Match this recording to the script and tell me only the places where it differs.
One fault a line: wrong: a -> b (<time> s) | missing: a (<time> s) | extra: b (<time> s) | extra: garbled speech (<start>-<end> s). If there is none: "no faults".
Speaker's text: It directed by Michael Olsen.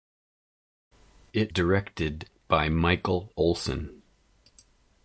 no faults